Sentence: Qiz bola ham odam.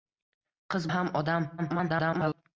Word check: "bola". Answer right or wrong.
wrong